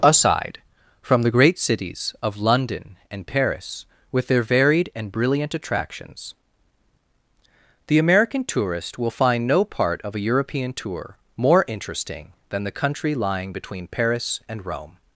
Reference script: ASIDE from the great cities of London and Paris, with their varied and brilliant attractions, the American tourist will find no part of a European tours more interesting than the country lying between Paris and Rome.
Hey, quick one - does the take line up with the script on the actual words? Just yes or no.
no